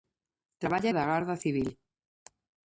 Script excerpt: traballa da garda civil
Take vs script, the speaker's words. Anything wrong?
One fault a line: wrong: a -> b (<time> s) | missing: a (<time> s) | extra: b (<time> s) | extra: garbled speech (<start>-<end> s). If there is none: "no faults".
no faults